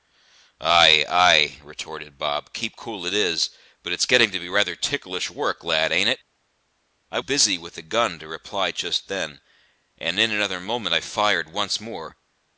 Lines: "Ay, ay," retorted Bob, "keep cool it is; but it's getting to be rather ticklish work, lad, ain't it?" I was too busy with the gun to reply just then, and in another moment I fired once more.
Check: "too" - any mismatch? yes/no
yes